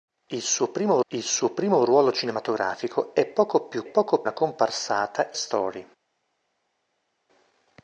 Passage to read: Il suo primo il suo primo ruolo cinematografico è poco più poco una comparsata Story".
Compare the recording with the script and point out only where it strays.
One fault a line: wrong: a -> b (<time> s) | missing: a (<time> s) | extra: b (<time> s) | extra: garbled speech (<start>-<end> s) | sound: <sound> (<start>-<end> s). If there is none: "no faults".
no faults